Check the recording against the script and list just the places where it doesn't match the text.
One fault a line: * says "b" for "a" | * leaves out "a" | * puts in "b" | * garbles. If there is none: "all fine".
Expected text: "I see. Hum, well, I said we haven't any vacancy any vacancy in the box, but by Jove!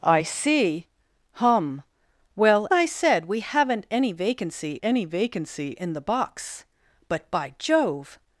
all fine